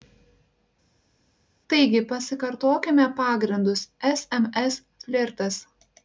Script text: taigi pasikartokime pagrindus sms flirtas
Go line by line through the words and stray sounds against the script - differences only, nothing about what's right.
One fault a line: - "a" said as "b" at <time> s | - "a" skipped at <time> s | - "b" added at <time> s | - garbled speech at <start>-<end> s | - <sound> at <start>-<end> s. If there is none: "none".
none